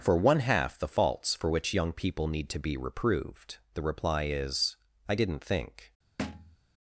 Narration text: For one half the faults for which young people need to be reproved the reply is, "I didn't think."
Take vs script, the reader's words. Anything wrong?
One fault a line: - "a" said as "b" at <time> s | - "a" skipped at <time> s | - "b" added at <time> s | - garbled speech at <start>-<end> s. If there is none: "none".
none